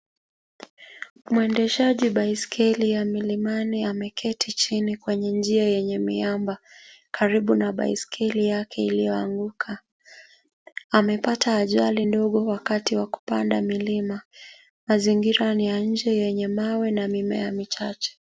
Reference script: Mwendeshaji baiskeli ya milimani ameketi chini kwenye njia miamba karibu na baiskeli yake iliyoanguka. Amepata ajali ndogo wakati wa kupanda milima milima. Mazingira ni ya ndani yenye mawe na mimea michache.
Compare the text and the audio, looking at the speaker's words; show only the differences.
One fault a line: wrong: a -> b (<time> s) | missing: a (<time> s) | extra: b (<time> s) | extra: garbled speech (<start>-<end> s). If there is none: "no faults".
extra: yenye (5.6 s)
missing: milima (14.2 s)
wrong: ndani -> nje (15.8 s)